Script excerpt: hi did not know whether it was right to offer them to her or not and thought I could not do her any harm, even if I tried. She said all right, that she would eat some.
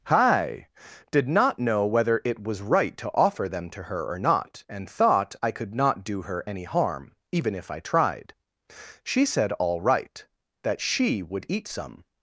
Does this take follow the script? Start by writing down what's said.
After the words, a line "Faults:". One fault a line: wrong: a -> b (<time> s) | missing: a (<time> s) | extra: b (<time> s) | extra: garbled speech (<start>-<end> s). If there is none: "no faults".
hi did not know whether it was right to offer them to her or not and thought I could not do her any harm, even if I tried. She said all right, that she would eat some.
Faults:
no faults